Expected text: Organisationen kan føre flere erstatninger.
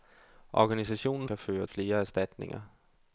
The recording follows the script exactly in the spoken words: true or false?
true